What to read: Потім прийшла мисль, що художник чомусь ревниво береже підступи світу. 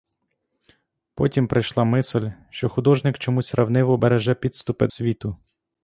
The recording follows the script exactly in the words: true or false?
true